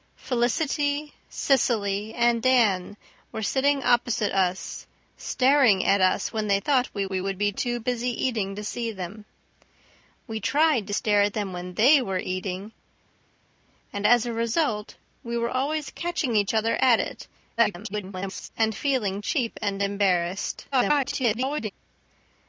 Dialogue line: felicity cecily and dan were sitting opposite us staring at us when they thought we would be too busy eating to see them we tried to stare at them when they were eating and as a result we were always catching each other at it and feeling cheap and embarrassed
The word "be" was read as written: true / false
true